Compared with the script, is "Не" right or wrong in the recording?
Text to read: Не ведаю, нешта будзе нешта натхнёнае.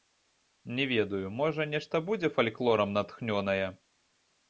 right